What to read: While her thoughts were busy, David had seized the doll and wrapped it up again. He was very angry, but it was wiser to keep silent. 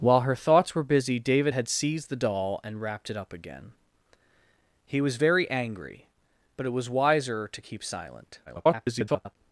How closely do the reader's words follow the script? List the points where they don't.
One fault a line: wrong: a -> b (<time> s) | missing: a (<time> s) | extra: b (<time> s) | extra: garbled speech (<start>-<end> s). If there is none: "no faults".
extra: garbled speech (8.5-9.4 s)